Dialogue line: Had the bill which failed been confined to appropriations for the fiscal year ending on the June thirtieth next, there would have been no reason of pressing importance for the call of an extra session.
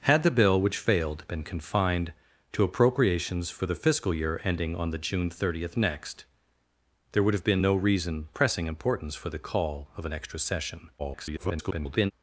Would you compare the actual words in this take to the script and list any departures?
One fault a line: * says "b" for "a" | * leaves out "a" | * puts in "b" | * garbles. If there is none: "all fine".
* leaves out "of"
* garbles